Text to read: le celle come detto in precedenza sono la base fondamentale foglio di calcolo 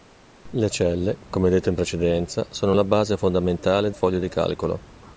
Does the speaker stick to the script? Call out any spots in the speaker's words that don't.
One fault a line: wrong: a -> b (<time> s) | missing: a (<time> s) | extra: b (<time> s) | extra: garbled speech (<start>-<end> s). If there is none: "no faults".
no faults